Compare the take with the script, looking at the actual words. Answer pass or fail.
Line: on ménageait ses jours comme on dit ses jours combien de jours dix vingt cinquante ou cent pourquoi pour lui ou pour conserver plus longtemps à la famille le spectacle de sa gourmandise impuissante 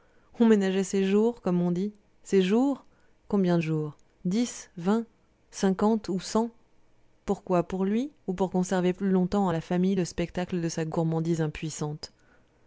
pass